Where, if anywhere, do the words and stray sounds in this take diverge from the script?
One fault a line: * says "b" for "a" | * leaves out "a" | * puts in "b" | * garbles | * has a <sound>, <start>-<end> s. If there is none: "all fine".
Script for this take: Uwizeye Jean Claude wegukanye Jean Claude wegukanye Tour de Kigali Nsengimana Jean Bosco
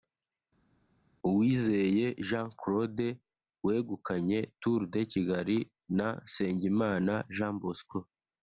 * leaves out "Jean Claude wegukanye"
* puts in "na"